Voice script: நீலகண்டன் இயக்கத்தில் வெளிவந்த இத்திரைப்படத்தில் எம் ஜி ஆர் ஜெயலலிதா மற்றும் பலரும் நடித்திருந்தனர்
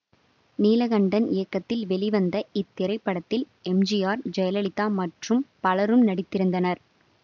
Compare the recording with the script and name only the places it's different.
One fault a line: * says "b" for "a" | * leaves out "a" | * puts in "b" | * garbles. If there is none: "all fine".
all fine